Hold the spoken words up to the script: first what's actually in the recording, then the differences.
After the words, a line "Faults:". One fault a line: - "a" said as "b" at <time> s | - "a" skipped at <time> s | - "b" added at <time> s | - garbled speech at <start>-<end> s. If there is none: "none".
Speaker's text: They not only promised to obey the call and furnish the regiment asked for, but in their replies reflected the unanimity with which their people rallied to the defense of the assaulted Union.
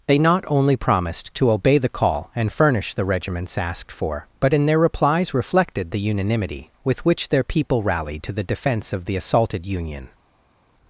They not only promised to obey the call and furnish the regiments asked for, but in their replies reflected the unanimity with which their people rallied to the defense of the assaulted Union.
Faults:
- "regiment" said as "regiments" at 3.1 s